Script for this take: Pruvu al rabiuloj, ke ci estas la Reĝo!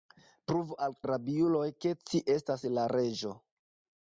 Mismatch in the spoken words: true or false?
false